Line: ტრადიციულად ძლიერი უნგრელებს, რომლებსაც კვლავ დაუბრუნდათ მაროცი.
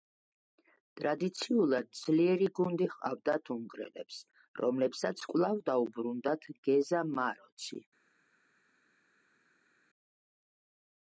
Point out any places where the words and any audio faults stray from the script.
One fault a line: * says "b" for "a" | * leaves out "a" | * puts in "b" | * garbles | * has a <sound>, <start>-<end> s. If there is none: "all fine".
* puts in "გუნდი ჰყავდათ"
* puts in "გეზა"